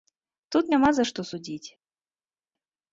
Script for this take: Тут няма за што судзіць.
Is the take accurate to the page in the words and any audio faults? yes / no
yes